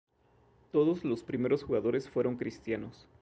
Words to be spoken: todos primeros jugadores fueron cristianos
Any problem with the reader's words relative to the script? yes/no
yes